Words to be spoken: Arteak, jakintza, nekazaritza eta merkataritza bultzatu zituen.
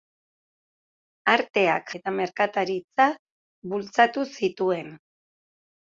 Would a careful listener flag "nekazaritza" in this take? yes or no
yes